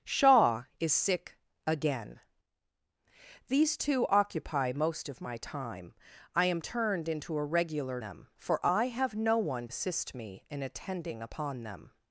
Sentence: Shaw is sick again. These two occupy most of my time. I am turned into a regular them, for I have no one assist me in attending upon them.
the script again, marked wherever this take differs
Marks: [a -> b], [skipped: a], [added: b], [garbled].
Shaw is sick again. These two occupy most of my time. I am turned into a regular them, for I have no one assist me in attending upon them.